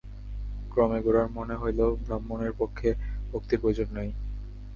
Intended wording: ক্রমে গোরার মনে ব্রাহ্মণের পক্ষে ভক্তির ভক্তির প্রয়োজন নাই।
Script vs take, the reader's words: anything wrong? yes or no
yes